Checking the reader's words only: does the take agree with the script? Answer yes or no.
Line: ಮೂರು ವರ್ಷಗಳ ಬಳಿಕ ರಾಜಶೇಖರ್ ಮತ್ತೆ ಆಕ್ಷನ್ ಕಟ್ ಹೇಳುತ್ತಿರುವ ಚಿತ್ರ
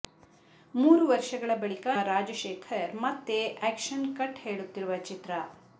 yes